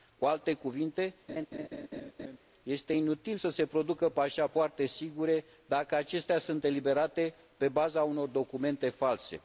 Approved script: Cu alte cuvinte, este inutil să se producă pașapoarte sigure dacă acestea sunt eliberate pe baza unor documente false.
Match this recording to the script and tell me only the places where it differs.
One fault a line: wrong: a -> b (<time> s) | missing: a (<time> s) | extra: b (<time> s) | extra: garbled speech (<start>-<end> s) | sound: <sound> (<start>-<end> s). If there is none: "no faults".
sound: laugh (1.3-2.4 s)